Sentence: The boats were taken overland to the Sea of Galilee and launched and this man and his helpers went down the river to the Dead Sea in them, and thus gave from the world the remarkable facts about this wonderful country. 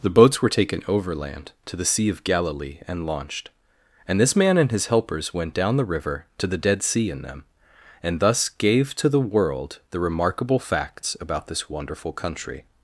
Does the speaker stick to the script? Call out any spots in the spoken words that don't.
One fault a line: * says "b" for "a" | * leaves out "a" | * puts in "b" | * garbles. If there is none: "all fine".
* says "to" for "from"